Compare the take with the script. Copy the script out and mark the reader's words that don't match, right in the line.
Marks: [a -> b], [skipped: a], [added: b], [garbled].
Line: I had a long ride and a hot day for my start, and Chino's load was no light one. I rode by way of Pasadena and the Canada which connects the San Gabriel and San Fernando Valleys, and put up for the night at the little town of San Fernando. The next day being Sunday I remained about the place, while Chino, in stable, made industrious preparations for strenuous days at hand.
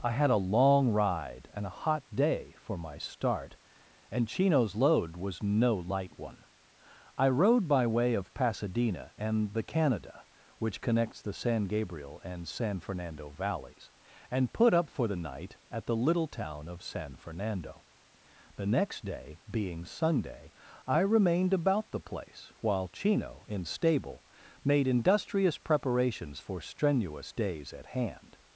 I had a long ride and a hot day for my start, and Chino's load was no light one. I rode by way of Pasadena and the Canada which connects the San Gabriel and San Fernando Valleys, and put up for the night at the little town of San Fernando. The next day being Sunday I remained about the place, while Chino, in stable, made industrious preparations for strenuous days at hand.